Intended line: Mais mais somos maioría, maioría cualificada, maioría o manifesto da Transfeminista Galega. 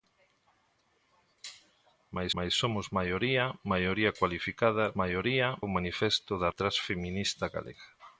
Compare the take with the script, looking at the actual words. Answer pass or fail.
pass